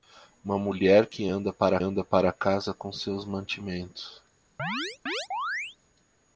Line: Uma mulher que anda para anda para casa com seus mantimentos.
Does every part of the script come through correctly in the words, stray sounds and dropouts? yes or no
no